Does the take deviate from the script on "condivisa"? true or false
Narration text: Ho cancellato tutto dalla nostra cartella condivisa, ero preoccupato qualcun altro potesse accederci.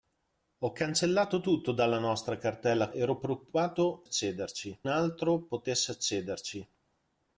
true